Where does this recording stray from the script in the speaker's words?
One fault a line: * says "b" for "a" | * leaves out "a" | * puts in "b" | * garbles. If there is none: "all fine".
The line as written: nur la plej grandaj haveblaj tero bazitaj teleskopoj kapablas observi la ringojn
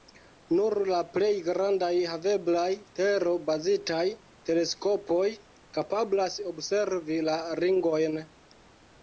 all fine